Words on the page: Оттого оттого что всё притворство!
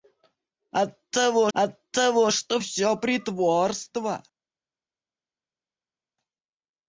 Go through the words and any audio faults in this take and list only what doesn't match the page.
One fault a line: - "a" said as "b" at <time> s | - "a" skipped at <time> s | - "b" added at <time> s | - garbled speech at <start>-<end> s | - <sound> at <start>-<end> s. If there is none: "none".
none